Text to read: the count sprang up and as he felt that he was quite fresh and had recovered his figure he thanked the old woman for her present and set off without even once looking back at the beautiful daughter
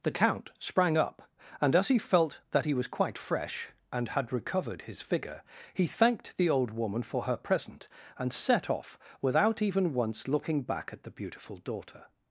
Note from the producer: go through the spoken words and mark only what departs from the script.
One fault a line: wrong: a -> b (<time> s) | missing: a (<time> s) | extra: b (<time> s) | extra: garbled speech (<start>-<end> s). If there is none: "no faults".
no faults